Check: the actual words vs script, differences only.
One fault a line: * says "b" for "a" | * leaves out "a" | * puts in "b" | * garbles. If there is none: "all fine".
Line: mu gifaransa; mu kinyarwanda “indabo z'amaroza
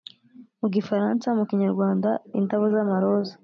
all fine